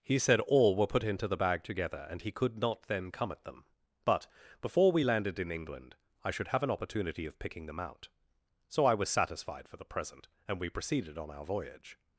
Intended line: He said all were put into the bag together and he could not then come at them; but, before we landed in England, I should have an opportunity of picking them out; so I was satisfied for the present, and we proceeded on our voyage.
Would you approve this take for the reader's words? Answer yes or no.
yes